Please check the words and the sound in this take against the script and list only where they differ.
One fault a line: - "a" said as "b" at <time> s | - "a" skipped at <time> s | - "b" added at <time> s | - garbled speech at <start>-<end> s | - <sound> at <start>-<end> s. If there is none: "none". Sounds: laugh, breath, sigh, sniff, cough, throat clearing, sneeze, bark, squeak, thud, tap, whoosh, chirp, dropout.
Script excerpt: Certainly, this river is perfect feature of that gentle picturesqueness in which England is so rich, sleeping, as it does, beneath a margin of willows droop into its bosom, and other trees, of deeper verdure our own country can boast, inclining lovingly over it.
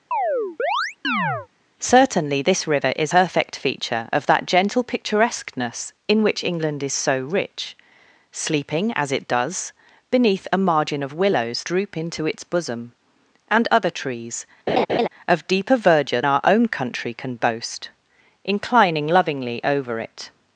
- chirp at 0.1-1.5 s
- laugh at 14.7-15.1 s